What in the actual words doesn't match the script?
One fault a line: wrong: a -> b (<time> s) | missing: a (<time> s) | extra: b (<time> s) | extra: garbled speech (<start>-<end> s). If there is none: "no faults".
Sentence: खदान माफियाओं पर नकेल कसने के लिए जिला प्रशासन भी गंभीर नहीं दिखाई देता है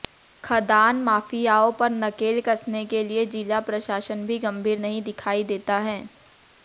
no faults